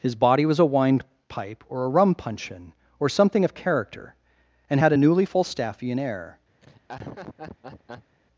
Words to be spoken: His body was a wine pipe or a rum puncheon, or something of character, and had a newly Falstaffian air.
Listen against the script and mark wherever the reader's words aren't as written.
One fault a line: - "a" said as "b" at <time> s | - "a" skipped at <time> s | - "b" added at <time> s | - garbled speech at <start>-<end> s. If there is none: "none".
none